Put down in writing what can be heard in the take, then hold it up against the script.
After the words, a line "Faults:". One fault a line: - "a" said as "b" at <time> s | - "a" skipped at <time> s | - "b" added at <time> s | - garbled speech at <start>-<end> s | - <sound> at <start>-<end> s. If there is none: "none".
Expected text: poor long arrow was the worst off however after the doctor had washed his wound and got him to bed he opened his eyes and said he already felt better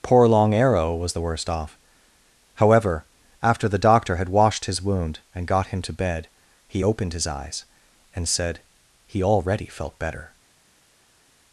poor long arrow was the worst off however after the doctor had washed his wound and got him to bed he opened his eyes and said he already felt better
Faults:
none